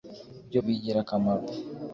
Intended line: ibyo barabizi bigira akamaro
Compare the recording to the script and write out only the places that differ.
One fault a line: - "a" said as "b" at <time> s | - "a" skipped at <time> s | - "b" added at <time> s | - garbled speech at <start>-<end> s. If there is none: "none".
- "barabizi" skipped at 0.6 s